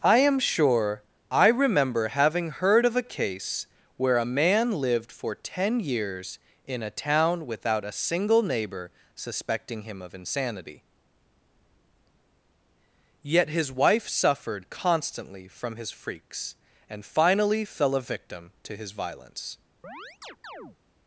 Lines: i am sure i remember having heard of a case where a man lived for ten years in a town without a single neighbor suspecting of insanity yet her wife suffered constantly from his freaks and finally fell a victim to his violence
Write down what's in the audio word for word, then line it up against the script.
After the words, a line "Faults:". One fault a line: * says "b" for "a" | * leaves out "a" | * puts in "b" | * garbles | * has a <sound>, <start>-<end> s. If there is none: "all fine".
i am sure i remember having heard of a case where a man lived for ten years in a town without a single neighbor suspecting him of insanity yet his wife suffered constantly from his freaks and finally fell a victim to his violence
Faults:
* puts in "him"
* says "his" for "her"
* has a chirp, 19.8-20.8 s